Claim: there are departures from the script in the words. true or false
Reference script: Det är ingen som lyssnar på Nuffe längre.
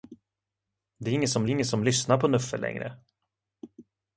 true